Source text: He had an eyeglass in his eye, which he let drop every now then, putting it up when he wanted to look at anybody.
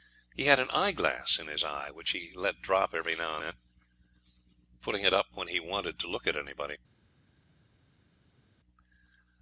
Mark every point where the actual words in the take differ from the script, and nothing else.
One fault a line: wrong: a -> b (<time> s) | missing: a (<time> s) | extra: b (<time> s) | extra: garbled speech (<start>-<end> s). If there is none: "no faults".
no faults